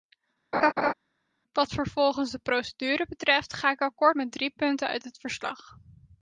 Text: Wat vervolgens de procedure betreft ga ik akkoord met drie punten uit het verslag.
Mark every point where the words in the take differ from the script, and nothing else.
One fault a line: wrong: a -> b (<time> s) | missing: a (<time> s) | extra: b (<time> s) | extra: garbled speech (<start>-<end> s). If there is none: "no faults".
no faults